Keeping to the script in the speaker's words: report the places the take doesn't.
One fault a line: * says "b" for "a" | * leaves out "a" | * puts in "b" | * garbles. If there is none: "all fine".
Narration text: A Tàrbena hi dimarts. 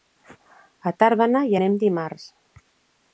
* puts in "anem"